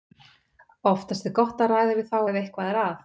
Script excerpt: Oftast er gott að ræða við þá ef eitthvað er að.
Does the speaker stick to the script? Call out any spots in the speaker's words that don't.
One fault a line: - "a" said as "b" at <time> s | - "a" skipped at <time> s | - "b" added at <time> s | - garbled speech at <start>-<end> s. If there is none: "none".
none